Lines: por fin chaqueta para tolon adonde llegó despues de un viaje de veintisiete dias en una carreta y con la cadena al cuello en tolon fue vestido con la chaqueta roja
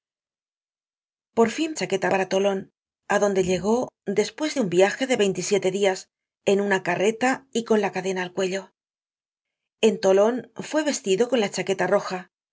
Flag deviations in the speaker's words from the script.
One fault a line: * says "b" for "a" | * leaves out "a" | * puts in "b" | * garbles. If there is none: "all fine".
all fine